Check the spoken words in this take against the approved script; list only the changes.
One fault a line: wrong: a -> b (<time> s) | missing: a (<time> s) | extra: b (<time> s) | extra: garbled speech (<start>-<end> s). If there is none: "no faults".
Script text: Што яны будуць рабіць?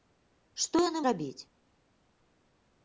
missing: будуць (1.0 s)